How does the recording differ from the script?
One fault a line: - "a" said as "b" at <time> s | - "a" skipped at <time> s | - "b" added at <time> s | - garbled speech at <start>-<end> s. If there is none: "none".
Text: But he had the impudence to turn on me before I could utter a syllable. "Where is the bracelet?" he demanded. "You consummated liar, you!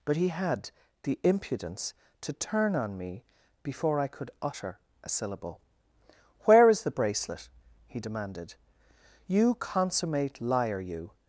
- "consummated" said as "consummate" at 9.6 s